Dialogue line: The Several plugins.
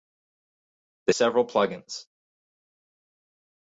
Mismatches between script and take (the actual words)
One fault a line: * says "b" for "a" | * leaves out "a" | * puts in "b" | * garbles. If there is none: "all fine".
all fine